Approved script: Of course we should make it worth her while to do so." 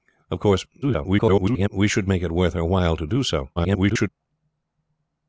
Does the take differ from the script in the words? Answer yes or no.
yes